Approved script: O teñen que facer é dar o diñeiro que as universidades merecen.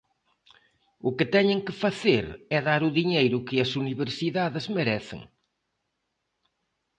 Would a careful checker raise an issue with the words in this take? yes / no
yes